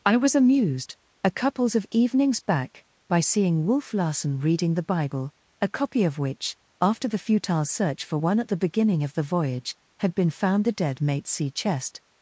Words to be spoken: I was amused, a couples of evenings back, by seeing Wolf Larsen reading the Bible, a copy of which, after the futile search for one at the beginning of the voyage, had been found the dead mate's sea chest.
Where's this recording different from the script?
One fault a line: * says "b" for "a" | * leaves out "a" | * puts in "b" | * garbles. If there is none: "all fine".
all fine